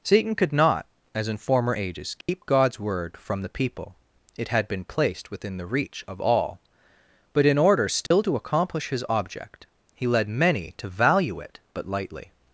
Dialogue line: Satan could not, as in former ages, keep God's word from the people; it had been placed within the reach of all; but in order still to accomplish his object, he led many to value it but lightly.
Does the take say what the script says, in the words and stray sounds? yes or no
no